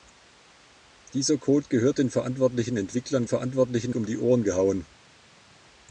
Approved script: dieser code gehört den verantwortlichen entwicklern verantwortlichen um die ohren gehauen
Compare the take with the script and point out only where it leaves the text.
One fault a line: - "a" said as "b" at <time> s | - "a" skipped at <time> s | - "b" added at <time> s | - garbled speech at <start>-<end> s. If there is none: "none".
none